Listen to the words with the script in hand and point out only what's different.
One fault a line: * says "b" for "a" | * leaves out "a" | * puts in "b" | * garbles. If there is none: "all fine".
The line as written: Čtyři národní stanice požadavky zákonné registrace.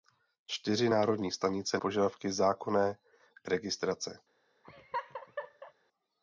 all fine